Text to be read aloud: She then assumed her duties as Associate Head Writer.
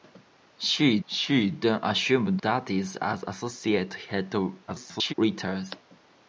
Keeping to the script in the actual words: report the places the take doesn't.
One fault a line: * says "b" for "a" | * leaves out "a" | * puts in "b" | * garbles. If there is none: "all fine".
* puts in "she"
* leaves out "her"
* garbles